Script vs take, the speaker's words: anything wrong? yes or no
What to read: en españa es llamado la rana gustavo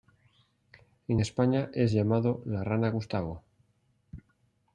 no